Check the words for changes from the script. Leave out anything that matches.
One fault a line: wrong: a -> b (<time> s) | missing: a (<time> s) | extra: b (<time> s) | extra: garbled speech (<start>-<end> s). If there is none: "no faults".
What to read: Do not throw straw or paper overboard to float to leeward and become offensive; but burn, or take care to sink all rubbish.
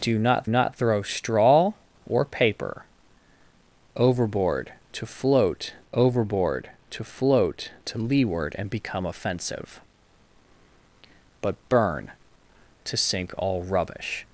extra: not (0.5 s)
extra: overboard (5.9 s)
extra: float to (7.0 s)
missing: or take care (12.1 s)